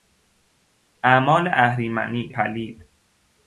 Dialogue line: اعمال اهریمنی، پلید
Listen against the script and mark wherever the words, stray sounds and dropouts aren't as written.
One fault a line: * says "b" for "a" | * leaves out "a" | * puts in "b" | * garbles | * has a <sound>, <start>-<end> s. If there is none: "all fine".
all fine